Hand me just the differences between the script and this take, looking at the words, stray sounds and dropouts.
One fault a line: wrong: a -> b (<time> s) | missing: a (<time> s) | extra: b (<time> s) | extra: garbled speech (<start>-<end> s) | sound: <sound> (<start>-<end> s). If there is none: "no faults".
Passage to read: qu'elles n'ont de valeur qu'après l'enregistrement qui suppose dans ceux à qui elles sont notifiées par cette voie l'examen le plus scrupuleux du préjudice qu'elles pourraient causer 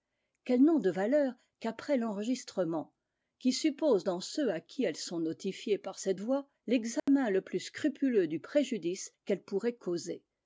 sound: dropout (7.0-7.1 s)